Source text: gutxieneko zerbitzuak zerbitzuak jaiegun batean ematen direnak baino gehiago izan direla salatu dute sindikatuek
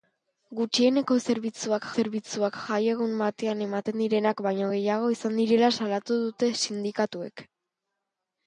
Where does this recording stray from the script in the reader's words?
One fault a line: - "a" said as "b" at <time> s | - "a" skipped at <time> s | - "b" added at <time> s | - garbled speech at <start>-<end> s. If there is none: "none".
none